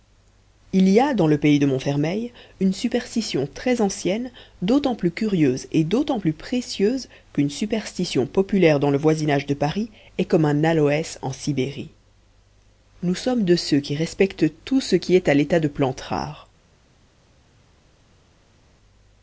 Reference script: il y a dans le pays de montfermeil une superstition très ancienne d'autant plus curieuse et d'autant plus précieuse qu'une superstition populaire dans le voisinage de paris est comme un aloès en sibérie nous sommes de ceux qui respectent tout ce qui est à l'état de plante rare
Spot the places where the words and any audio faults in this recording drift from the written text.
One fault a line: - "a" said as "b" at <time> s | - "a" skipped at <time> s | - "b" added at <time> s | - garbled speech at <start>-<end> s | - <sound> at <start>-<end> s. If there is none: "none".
none